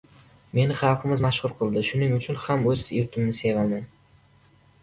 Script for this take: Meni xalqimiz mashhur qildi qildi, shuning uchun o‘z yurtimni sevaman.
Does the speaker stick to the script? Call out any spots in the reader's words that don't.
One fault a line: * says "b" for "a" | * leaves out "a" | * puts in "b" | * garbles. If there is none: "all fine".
* leaves out "qildi"
* puts in "ham"